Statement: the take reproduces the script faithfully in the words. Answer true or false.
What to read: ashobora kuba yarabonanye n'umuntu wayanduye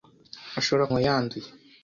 false